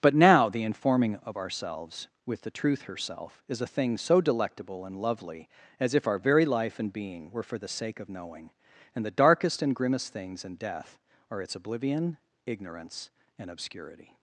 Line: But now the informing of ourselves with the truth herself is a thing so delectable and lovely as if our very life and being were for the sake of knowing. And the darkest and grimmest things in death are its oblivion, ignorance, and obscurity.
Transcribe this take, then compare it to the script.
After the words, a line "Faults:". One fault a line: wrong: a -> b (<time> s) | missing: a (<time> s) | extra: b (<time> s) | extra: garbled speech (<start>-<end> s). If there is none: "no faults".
But now the informing of ourselves with the truth herself is a thing so delectable and lovely as if our very life and being were for the sake of knowing. And the darkest and grimmest things in death are its oblivion, ignorance, and obscurity.
Faults:
no faults